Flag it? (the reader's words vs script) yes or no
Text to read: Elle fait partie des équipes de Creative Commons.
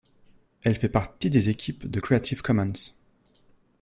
no